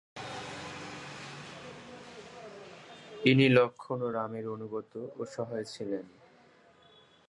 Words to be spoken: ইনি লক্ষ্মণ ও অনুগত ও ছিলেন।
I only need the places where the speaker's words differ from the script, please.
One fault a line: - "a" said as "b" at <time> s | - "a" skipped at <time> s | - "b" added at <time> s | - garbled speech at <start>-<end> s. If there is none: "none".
- "রামের" added at 4.1 s
- "সহায়" added at 5.3 s